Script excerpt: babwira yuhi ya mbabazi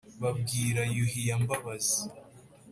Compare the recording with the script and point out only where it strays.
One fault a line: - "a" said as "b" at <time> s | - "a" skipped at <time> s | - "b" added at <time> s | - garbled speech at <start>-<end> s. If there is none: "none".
none